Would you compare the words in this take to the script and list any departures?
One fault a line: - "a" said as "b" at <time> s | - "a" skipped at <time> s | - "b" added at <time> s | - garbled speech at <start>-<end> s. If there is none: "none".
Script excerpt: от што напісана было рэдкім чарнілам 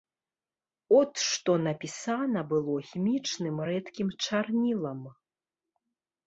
- "хімічным" added at 2.9 s